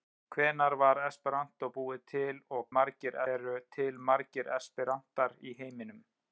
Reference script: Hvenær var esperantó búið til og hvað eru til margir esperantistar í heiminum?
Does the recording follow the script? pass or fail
fail